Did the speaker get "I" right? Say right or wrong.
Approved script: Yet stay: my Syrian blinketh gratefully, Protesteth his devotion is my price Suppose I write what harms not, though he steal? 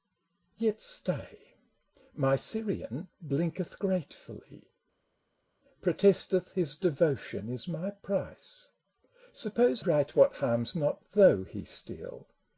wrong